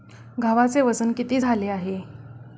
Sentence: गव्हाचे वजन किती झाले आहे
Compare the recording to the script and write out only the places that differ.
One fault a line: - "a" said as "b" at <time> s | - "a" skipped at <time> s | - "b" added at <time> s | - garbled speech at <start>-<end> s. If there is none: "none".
none